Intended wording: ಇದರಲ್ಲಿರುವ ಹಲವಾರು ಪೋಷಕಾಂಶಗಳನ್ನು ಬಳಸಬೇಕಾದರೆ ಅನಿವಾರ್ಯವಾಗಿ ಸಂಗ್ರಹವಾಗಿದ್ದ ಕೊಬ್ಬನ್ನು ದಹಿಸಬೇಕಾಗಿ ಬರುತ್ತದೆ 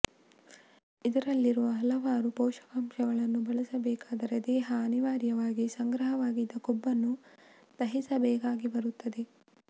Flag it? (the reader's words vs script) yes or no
yes